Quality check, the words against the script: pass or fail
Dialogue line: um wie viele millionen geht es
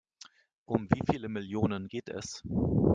pass